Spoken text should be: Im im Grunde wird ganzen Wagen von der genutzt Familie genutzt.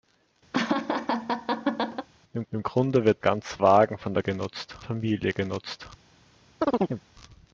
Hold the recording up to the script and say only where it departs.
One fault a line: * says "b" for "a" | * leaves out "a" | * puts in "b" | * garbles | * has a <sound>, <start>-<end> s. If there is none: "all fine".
* has a laugh, 0.5-2.1 s
* has a chirp, 6.6-7.0 s